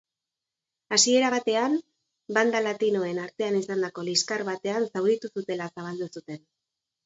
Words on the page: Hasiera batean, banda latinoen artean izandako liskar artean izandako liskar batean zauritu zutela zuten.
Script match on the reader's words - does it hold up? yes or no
no